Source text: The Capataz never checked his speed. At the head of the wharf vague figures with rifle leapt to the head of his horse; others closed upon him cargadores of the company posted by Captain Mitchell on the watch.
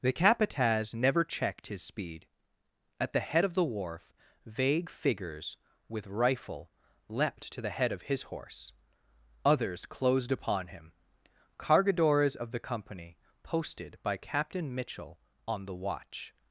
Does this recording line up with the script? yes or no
yes